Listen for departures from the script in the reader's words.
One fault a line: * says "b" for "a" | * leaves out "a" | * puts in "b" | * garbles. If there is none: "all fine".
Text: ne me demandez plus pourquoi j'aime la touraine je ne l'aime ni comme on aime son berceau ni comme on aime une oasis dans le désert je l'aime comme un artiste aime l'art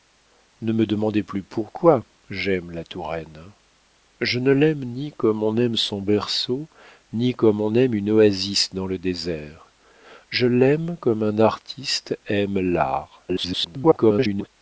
* garbles